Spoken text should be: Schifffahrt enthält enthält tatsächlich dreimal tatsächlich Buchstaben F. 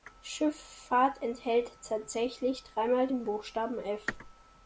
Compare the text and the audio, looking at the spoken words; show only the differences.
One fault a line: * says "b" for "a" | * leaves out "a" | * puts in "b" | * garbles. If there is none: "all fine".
* leaves out "enthält"
* says "den" for "tatsächlich"